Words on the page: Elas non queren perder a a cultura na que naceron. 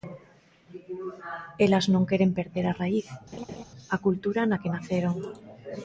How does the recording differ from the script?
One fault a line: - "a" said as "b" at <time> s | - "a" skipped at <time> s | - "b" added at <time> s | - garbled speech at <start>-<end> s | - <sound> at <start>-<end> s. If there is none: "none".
- "raíz" added at 2.8 s
- laugh at 3.3-3.6 s